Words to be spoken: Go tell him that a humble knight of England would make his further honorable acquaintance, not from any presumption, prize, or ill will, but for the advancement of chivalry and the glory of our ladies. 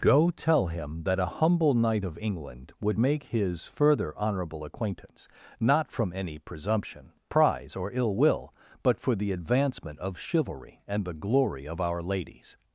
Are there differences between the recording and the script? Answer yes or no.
no